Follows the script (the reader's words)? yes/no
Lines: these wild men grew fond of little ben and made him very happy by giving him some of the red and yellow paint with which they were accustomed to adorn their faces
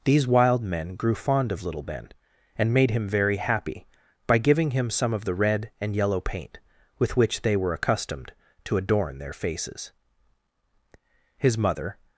no